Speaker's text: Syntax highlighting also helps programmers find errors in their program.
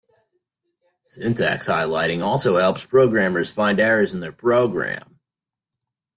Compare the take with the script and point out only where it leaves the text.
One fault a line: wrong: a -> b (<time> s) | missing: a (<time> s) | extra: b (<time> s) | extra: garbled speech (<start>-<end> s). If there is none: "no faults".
no faults